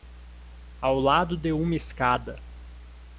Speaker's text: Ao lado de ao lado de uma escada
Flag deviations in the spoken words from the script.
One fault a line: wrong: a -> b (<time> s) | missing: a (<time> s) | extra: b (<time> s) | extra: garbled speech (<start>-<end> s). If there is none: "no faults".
missing: ao lado de (1.5 s)